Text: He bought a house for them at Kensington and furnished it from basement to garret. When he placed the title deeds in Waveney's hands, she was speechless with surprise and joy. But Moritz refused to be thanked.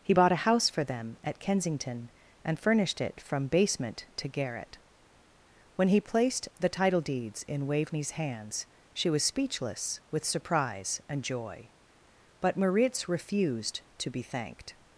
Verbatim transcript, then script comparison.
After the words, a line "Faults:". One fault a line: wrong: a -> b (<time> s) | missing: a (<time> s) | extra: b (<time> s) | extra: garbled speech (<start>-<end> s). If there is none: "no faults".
He bought a house for them at Kensington and furnished it from basement to garret. When he placed the title deeds in Waveney's hands, she was speechless with surprise and joy. But Moritz refused to be thanked.
Faults:
no faults